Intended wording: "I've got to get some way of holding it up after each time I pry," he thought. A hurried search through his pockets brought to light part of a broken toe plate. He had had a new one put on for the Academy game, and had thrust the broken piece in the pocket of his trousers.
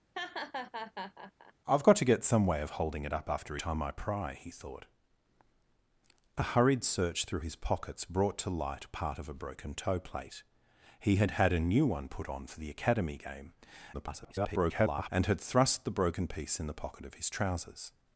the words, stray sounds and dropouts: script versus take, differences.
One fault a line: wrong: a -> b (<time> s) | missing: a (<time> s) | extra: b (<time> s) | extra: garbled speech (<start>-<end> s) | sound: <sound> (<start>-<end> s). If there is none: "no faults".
sound: laugh (0.1-1.5 s)
missing: each (3.6 s)
extra: garbled speech (13.9-15.1 s)